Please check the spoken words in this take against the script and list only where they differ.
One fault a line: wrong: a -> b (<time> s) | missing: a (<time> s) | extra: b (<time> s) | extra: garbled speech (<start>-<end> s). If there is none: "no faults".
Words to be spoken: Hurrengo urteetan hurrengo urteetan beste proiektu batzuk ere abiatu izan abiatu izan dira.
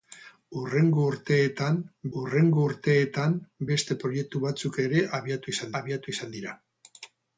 no faults